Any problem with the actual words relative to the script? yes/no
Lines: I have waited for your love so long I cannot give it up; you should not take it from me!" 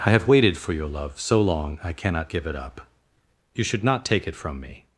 no